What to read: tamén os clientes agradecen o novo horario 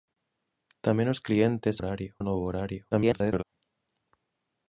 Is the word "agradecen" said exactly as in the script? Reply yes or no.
no